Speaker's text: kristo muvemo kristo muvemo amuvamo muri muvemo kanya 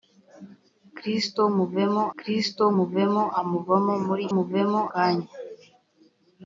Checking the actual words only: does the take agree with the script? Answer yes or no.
yes